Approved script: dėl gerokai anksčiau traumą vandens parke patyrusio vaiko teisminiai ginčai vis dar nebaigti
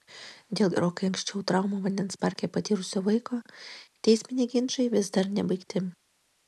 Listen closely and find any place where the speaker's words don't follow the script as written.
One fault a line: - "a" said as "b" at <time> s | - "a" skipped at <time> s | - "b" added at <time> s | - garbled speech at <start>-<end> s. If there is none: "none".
none